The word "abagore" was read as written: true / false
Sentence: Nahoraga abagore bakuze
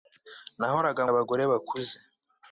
true